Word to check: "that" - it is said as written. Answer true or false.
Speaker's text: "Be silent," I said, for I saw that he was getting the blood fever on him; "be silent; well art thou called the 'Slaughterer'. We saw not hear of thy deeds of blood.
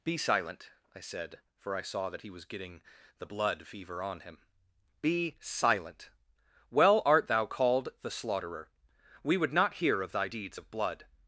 true